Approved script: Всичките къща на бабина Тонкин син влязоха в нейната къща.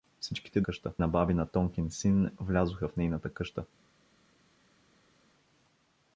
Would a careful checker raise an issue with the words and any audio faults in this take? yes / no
no